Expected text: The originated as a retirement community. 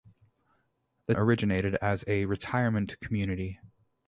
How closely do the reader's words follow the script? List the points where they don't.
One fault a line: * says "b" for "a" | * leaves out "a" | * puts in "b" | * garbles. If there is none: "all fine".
all fine